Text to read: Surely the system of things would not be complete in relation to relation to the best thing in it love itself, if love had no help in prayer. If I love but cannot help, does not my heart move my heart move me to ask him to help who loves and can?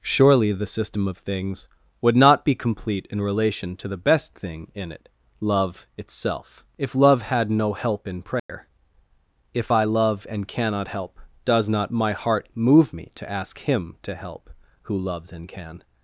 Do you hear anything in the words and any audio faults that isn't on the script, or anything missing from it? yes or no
yes